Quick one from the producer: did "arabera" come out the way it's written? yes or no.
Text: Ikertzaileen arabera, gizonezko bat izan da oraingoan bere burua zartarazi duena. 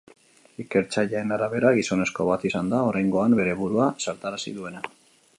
yes